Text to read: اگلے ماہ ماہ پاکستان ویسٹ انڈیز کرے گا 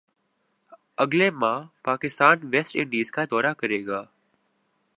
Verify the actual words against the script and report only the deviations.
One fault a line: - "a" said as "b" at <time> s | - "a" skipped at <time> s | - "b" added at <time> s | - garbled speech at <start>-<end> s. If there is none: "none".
- "ماہ" skipped at 1.6 s
- "کا دورہ" added at 3.1 s